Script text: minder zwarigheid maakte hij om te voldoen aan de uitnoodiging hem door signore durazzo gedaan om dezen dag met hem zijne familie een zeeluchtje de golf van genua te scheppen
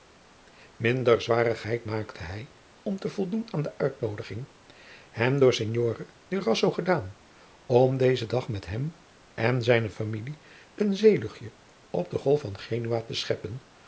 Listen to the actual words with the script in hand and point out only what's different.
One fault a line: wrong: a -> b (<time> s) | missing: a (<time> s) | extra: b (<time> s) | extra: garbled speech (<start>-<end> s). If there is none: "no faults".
extra: en (9.3 s)
extra: op (11.9 s)